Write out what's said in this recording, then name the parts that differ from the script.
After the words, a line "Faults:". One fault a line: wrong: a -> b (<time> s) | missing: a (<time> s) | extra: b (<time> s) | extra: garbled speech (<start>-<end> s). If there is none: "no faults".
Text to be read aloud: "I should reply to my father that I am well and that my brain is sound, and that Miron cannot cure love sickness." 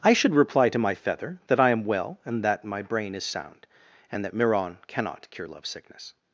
"I should reply to my feather that I am well and that my brain is sound, and that Miron cannot cure love sickness."
Faults:
wrong: father -> feather (0.9 s)